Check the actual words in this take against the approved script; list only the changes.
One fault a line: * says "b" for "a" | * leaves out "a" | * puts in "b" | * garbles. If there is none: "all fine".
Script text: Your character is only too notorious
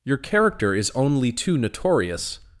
all fine